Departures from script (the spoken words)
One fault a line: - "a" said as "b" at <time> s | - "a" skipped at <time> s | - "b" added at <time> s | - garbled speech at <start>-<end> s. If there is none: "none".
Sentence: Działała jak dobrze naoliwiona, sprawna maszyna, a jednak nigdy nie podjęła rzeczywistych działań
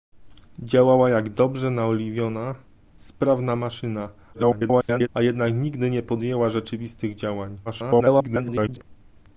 - garbled speech at 4.3-5.1 s
- garbled speech at 7.6-8.8 s